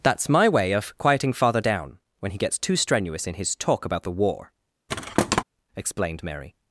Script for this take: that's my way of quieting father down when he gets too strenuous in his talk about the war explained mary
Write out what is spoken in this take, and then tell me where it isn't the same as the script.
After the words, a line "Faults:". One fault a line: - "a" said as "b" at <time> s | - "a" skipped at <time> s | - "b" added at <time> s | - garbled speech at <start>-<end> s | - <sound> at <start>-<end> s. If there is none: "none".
that's my way of quieting father down when he gets too strenuous in his talk about the war explained mary
Faults:
- thud at 4.9-5.4 s